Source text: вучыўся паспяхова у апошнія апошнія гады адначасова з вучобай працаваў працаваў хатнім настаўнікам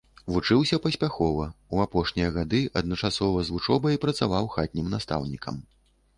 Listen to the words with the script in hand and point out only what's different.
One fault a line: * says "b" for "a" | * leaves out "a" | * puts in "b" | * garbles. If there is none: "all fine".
* leaves out "апошнія"
* leaves out "працаваў"